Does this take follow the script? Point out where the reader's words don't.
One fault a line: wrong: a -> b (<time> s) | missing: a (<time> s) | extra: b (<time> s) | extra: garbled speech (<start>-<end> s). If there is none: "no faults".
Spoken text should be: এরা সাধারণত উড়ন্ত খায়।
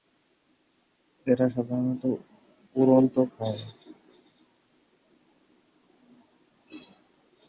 no faults